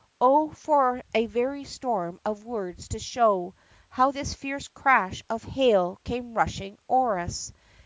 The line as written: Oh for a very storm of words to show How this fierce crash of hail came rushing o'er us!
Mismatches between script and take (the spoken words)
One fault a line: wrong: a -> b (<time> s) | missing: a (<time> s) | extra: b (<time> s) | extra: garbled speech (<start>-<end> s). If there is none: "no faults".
no faults